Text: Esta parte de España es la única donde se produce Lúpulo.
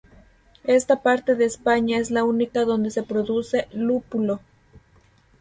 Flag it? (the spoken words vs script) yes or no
no